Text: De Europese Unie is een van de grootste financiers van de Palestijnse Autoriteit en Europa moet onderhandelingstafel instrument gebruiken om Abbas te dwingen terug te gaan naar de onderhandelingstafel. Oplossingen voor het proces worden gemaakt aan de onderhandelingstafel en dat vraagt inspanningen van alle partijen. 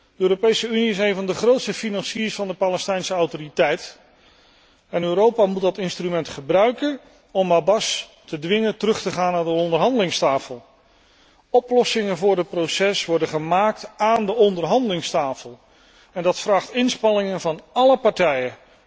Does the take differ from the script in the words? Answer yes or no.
yes